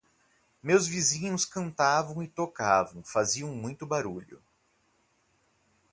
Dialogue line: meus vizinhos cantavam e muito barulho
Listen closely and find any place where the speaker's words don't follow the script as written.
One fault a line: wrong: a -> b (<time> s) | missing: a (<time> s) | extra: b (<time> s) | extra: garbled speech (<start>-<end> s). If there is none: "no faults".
extra: tocavam faziam (2.3 s)